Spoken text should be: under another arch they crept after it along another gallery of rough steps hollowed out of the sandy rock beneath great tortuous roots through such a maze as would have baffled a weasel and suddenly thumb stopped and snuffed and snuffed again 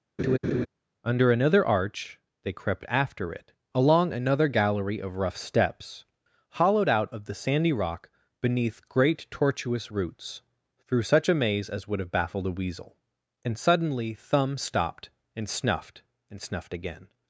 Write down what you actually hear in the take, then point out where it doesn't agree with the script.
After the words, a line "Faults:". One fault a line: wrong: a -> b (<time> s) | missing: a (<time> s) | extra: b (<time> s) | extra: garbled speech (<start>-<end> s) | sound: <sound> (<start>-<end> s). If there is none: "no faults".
under another arch they crept after it along another gallery of rough steps hollowed out of the sandy rock beneath great tortuous roots through such a maze as would have baffled a weasel and suddenly thumb stopped and snuffed and snuffed again
Faults:
sound: laugh (0.2-0.7 s)